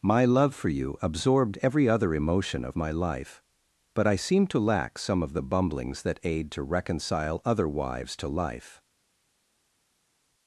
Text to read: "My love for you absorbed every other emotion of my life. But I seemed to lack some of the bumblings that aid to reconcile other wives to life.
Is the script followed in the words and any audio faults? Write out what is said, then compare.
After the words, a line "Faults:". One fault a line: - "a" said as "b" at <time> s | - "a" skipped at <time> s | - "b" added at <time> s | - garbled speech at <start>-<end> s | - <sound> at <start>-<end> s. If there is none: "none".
"My love for you absorbed every other emotion of my life. But I seemed to lack some of the bumblings that aid to reconcile other wives to life.
Faults:
none